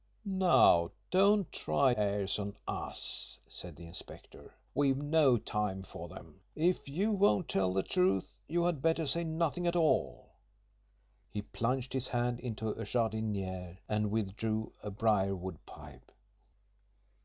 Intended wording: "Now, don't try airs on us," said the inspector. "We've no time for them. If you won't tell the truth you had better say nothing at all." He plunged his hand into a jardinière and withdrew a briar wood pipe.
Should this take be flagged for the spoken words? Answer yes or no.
no